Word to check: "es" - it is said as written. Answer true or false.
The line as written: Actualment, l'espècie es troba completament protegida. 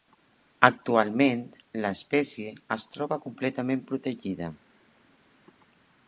true